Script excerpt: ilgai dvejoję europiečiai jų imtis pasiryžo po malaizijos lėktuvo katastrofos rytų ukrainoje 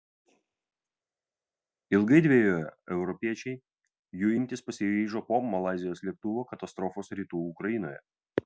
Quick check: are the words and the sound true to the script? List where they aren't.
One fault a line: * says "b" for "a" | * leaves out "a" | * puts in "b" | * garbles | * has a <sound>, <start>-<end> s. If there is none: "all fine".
all fine